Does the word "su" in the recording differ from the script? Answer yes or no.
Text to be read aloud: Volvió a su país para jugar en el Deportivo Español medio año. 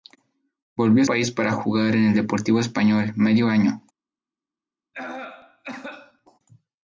yes